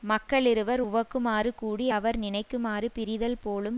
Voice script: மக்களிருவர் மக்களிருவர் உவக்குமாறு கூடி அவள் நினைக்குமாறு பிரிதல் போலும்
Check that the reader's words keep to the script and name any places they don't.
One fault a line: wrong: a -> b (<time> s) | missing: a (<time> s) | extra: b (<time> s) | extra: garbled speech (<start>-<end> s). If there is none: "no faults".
missing: மக்களிருவர் (0.8 s)
wrong: அவள் -> அவர் (1.9 s)